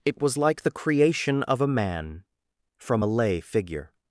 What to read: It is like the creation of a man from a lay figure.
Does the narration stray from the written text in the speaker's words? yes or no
yes